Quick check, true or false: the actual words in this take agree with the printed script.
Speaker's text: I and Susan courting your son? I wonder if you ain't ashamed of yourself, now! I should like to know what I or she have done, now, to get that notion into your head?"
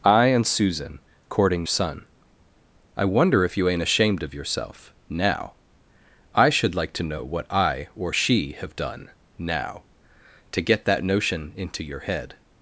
false